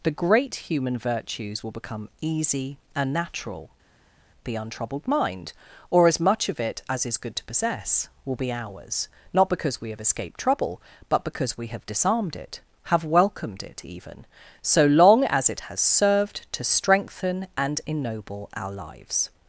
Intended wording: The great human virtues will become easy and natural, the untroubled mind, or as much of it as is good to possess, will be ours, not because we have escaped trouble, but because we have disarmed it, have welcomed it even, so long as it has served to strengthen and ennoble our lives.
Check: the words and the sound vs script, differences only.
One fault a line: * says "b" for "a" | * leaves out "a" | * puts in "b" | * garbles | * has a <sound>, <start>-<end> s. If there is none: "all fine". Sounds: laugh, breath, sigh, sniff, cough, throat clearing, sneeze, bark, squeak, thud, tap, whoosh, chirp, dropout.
all fine